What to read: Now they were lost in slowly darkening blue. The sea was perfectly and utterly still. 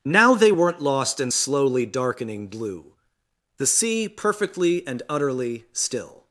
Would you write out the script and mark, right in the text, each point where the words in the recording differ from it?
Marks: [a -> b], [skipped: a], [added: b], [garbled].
Now they [were -> weren't] lost in slowly darkening blue. The sea [skipped: was] perfectly and utterly still.